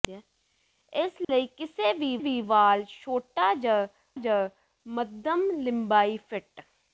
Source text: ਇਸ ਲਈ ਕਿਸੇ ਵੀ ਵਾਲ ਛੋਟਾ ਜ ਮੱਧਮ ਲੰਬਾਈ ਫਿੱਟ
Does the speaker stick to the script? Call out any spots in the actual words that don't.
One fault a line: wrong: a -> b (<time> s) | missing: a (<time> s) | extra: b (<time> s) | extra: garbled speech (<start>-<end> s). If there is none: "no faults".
extra: ਵੀ (2.2 s)
extra: ਜ (4.2 s)